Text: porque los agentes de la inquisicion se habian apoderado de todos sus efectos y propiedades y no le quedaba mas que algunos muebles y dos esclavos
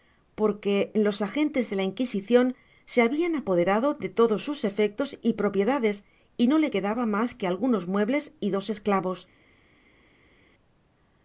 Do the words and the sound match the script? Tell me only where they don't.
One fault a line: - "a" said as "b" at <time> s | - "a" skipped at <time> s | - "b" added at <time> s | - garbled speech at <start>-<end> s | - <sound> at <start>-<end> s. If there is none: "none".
none